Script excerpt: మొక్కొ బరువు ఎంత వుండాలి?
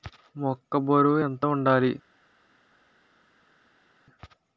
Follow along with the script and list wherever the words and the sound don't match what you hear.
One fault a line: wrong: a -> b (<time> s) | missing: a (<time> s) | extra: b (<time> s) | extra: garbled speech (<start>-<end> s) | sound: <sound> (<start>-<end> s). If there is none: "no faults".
no faults